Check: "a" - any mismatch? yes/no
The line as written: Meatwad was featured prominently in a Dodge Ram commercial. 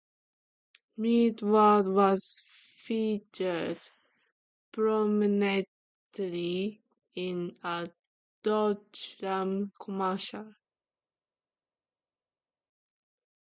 no